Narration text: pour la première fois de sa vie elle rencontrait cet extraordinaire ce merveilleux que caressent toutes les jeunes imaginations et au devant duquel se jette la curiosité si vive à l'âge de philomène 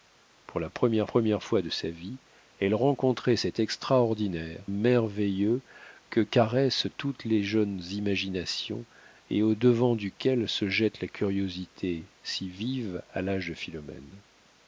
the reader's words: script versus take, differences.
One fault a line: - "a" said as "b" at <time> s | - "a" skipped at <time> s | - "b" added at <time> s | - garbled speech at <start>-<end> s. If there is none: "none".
- "première" added at 1.0 s
- "ce" skipped at 4.7 s